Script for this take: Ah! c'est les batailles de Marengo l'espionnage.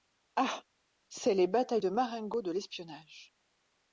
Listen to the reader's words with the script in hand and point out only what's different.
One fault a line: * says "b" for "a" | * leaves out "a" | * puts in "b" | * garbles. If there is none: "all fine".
* puts in "de"